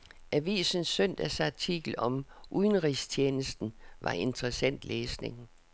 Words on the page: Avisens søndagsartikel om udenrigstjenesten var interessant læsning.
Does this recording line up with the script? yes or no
yes